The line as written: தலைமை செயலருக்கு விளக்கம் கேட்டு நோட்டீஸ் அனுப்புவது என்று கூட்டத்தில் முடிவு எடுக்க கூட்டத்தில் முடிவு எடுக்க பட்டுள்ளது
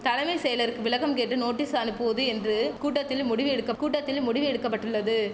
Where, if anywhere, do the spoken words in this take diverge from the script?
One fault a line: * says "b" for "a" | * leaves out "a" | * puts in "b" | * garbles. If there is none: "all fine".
all fine